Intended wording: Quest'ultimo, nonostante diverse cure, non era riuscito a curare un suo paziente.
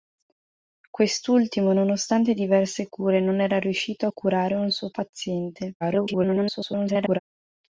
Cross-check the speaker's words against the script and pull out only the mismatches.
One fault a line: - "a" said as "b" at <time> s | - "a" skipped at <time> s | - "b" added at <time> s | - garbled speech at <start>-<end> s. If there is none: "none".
- garbled speech at 5.8-7.2 s